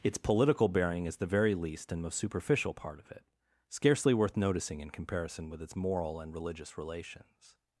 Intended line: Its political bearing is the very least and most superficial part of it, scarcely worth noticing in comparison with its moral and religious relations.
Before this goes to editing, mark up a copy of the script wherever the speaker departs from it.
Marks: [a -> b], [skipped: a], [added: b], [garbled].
Its political bearing is the very least and most superficial part of it, scarcely worth noticing in comparison with its moral and religious relations.